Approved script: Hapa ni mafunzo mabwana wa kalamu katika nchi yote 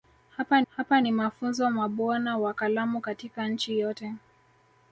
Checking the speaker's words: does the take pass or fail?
fail